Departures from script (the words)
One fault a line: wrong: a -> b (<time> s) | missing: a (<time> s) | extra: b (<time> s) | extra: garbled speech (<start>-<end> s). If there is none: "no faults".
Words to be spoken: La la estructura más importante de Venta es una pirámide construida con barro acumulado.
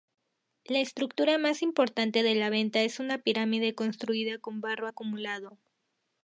missing: la (0.8 s)
extra: La (2.3 s)